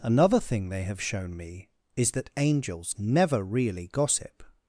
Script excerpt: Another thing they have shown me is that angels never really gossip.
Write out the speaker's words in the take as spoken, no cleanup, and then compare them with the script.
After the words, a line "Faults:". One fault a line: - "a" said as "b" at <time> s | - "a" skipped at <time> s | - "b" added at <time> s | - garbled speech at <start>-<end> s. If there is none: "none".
Another thing they have shown me is that angels never really gossip.
Faults:
none